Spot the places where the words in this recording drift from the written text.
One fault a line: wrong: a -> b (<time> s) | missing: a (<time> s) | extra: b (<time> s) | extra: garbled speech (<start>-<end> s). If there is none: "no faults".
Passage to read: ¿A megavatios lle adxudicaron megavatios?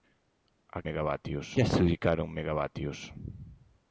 no faults